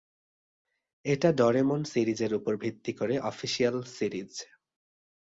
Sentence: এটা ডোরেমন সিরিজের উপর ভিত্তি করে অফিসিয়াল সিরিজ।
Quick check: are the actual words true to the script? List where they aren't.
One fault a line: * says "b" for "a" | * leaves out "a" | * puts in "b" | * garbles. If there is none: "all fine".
all fine